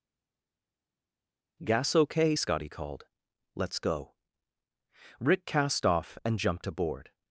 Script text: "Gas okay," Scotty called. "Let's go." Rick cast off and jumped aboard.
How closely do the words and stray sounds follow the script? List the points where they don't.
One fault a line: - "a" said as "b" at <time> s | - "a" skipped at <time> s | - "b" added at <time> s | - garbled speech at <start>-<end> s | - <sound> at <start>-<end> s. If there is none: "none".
none